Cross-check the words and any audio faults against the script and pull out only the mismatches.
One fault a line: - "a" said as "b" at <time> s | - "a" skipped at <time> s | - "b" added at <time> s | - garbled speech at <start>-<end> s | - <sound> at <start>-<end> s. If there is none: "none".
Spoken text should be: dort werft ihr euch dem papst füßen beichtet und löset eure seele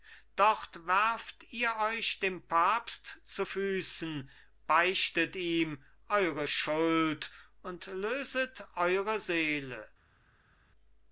- "zu" added at 3.2 s
- "ihm eure schuld" added at 5.3 s